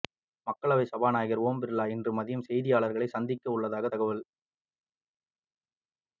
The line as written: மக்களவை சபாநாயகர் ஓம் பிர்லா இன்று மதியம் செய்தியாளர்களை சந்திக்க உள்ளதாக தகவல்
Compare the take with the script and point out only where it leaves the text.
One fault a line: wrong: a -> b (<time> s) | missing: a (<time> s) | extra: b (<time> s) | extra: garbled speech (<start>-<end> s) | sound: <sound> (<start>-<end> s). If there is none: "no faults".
no faults